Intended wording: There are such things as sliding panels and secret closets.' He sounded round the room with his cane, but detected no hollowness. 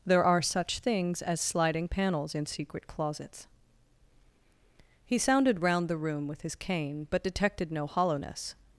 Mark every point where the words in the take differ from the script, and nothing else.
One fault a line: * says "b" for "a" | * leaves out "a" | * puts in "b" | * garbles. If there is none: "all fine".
* says "in" for "and"